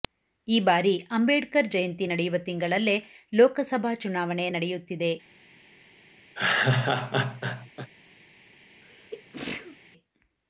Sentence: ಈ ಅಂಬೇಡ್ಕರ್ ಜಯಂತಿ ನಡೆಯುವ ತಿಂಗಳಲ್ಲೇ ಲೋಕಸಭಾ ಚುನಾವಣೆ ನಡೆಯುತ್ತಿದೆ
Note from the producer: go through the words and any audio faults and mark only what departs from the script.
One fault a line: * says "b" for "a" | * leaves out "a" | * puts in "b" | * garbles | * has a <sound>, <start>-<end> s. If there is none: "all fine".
* puts in "ಬಾರಿ"
* has a laugh, 6.3-7.9 s
* has a sneeze, 8.8-9.8 s